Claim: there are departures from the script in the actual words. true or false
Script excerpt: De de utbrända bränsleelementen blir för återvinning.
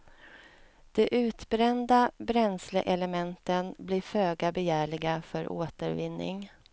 true